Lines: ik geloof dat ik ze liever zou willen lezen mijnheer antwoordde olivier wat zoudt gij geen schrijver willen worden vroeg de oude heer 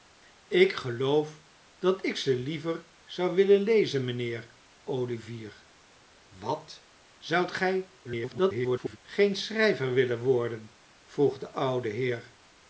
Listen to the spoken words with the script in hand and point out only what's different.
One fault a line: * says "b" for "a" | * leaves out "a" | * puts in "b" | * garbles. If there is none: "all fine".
* leaves out "antwoordde"
* garbles